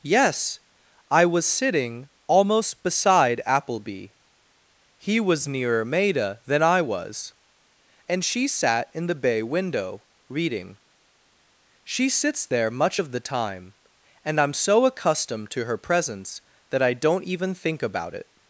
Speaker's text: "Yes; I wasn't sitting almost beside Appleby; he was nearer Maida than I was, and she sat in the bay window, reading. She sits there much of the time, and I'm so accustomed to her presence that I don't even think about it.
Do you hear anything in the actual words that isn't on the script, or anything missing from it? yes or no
yes